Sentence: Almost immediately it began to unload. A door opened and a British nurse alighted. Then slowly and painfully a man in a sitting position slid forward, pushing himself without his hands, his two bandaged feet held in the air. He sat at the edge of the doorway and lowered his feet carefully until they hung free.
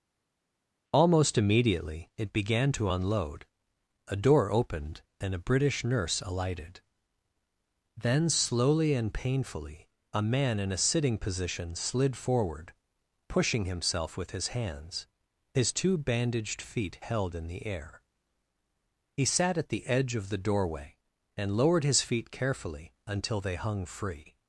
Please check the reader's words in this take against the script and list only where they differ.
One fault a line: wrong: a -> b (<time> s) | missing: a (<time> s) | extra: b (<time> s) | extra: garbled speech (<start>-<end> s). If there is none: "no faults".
wrong: without -> with (14.2 s)